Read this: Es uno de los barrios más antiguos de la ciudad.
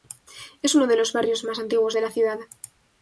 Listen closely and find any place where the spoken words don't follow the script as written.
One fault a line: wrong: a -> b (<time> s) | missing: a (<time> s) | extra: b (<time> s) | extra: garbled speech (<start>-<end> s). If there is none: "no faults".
no faults